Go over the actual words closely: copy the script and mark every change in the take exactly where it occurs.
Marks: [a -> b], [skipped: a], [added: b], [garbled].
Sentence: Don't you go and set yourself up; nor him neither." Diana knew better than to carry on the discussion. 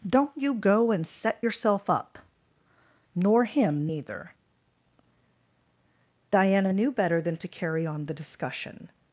Don't you go and set yourself up; nor him neither." Diana knew better than to carry on the discussion.